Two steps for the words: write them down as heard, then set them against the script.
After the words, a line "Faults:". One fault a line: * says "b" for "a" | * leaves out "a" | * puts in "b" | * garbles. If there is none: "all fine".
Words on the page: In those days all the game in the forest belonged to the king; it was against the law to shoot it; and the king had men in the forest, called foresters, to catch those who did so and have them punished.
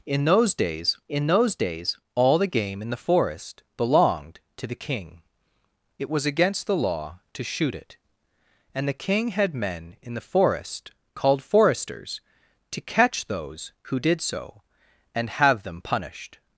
In those days in those days all the game in the forest belonged to the king; it was against the law to shoot it; and the king had men in the forest, called foresters, to catch those who did so and have them punished.
Faults:
* puts in "in those days"